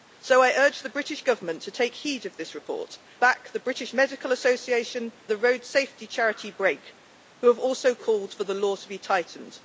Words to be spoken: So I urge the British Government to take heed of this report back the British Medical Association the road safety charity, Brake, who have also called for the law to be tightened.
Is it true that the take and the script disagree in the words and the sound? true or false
false